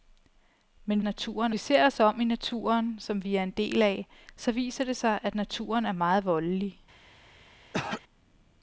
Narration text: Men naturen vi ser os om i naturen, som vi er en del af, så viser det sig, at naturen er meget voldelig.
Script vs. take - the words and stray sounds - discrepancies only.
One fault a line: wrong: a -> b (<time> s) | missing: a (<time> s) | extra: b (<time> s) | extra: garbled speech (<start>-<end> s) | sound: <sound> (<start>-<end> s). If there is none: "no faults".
sound: throat clearing (7.7-8.0 s)